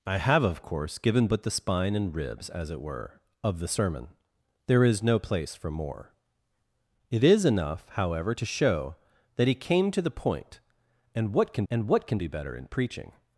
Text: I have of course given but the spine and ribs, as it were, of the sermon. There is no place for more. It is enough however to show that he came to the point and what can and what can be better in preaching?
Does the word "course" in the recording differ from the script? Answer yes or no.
no